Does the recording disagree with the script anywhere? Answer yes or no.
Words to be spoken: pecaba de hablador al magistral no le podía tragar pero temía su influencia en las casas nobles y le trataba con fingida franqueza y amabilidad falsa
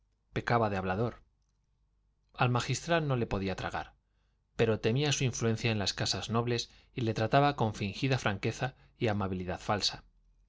no